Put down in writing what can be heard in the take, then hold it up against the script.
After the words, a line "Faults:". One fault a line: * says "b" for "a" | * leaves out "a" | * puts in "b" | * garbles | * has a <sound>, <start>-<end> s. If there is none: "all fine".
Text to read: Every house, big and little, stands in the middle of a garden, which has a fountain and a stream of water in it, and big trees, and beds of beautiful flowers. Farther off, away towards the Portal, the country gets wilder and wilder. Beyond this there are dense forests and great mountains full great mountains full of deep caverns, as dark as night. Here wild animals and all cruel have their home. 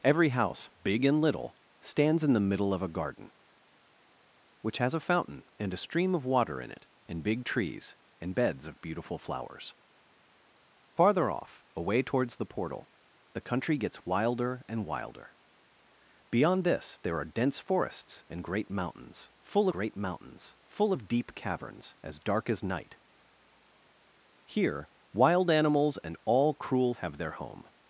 Every house, big and little, stands in the middle of a garden, which has a fountain and a stream of water in it, and big trees, and beds of beautiful flowers. Farther off, away towards the Portal, the country gets wilder and wilder. Beyond this there are dense forests and great mountains full great mountains full of deep caverns, as dark as night. Here wild animals and all cruel have their home.
Faults:
all fine